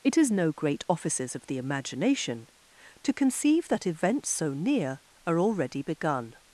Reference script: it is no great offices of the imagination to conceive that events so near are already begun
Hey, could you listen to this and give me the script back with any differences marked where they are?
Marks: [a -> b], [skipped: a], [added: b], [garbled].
it is no great offices of the imagination to conceive that events so near are already begun